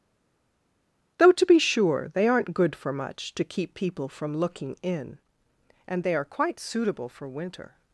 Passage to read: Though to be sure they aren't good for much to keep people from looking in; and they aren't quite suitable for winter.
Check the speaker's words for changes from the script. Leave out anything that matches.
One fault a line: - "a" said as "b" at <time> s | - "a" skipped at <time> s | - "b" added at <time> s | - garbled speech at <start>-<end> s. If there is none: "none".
- "aren't" said as "are" at 6.1 s